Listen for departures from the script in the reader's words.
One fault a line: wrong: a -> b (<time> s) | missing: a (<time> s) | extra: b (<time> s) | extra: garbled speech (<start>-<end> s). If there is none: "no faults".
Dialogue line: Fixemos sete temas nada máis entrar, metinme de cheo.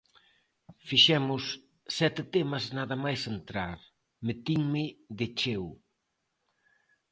no faults